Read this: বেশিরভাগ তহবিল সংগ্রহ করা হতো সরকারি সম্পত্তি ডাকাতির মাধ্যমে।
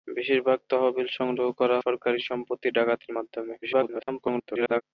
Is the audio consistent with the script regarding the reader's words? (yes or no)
no